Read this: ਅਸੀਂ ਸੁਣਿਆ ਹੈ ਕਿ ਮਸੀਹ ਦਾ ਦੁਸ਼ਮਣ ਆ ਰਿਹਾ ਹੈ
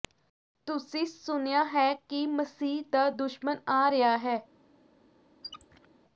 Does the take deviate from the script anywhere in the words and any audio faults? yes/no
yes